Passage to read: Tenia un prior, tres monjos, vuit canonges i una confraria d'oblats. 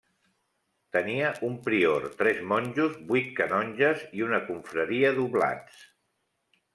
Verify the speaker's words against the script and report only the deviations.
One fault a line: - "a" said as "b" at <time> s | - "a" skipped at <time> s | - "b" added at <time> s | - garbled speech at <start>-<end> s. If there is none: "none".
none